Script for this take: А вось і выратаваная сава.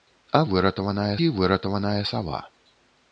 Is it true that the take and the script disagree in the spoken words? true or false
true